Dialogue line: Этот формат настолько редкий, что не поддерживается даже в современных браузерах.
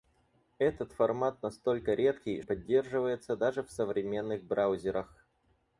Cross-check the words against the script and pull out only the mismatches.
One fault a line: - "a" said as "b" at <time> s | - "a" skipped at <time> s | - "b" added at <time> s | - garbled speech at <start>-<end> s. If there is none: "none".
- "что не" skipped at 2.4 s